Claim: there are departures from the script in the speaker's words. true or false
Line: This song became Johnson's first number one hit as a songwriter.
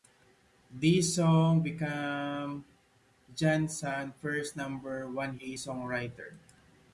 true